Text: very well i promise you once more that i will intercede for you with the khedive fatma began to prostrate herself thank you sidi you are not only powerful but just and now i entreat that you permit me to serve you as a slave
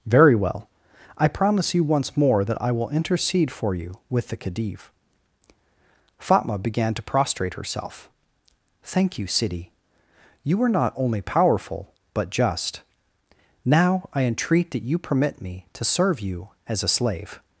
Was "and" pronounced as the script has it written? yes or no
no